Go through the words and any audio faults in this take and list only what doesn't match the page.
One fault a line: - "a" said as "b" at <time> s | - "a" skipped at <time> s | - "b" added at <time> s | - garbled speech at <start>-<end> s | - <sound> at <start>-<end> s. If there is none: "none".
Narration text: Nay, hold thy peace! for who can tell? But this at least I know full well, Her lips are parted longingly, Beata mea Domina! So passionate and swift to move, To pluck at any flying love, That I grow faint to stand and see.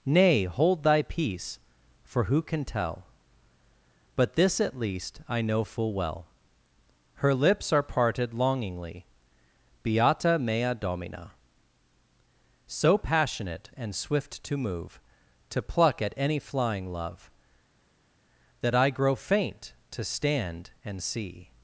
none